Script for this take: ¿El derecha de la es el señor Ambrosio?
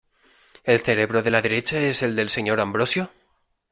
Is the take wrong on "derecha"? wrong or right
wrong